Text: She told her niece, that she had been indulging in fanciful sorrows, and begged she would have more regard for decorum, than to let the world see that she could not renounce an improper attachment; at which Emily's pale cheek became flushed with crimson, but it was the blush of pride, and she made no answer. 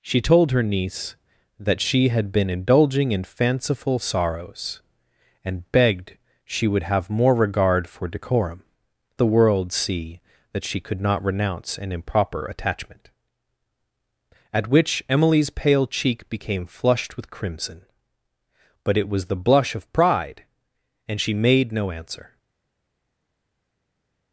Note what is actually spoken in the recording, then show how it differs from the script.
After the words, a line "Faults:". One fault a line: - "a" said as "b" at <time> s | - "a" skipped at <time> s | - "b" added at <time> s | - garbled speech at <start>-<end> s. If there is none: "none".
She told her niece, that she had been indulging in fanciful sorrows, and begged she would have more regard for decorum, the world see that she could not renounce an improper attachment; at which Emily's pale cheek became flushed with crimson, but it was the blush of pride, and she made no answer.
Faults:
- "than to let" skipped at 8.6 s